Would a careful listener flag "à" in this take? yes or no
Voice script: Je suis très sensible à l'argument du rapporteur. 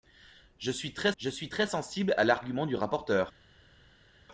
no